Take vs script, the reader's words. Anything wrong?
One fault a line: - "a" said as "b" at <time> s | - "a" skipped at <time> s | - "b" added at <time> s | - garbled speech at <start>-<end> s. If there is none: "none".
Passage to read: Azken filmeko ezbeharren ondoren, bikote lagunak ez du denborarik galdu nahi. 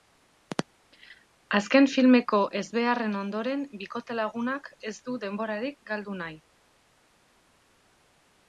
none